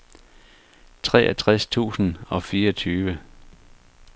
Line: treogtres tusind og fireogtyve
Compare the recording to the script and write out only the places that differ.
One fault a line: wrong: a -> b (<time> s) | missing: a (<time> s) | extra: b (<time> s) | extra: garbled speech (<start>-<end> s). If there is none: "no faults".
no faults